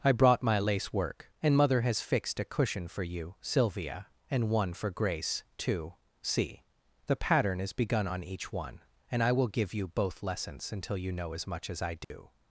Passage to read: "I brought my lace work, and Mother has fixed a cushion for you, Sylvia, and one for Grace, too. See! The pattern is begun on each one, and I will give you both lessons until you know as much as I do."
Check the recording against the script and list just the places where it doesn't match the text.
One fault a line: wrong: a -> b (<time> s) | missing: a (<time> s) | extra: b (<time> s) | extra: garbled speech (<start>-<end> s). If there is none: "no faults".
no faults